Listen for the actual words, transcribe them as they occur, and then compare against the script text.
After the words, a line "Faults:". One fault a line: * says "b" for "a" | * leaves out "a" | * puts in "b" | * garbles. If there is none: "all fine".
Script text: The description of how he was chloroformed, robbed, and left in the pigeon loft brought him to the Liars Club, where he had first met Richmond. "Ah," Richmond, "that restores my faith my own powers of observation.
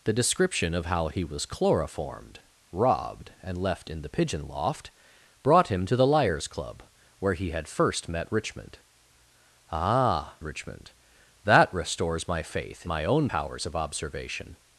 The description of how he was chloroformed, robbed, and left in the pigeon loft brought him to the Liars Club, where he had first met Richmond. "Ah," Richmond, "that restores my faith my own powers of observation.
Faults:
all fine